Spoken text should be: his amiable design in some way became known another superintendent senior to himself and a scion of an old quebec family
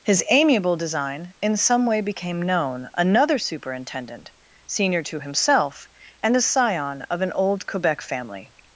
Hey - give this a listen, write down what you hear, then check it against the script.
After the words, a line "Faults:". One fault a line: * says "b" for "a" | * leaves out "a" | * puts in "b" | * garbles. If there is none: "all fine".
his amiable design in some way became known another superintendent senior to himself and a scion of an old quebec family
Faults:
all fine